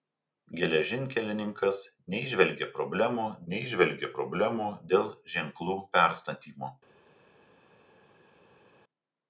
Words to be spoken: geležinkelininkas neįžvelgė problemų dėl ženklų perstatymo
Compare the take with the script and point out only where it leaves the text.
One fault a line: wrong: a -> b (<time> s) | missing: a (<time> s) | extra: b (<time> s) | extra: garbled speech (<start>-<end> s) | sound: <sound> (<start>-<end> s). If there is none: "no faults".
extra: neįžvelgė problemų (3.5 s)